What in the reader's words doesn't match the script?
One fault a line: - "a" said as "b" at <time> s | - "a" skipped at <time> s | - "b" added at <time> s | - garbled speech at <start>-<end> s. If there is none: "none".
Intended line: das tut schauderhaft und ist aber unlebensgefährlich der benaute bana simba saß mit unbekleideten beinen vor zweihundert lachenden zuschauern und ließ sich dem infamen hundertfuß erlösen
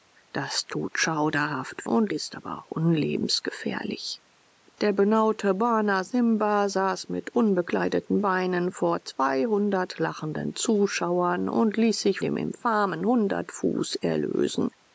none